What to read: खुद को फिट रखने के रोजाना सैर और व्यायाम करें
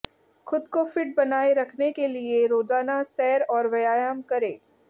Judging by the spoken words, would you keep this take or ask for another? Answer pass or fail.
fail